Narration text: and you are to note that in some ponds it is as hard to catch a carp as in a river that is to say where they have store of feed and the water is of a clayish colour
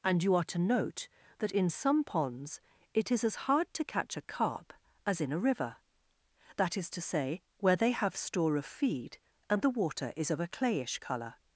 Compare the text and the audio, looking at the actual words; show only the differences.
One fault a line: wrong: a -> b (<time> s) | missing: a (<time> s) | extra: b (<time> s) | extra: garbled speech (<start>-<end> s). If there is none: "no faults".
no faults